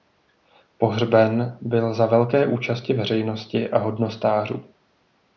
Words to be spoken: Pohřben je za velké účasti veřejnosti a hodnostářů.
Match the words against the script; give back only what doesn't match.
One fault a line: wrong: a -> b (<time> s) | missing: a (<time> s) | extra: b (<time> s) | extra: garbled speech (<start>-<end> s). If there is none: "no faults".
wrong: je -> byl (1.6 s)